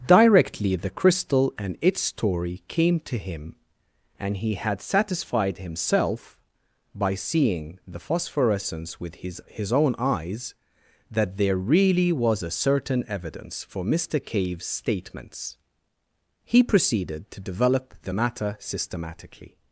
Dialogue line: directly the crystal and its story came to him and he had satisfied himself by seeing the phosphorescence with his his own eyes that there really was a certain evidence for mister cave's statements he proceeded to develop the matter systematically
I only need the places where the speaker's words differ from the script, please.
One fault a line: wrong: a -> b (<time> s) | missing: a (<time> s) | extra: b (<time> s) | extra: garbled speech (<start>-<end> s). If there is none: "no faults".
no faults